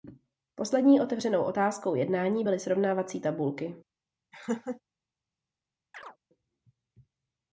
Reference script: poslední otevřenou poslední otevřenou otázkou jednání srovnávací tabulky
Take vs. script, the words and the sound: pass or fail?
fail